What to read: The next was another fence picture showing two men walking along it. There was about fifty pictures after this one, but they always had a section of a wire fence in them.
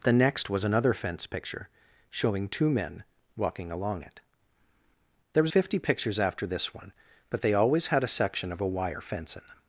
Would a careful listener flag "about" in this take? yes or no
yes